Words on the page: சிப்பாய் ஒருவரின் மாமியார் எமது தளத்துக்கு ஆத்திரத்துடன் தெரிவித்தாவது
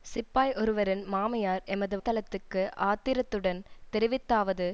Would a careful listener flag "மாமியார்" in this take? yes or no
no